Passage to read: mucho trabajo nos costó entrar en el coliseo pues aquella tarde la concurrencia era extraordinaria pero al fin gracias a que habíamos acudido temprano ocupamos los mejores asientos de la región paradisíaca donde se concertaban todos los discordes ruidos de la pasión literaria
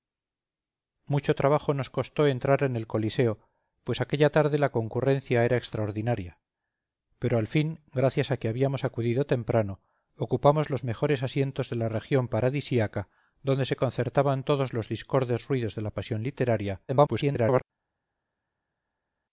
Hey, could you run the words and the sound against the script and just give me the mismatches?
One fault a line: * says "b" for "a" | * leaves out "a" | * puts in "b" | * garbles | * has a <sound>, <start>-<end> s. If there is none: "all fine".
* garbles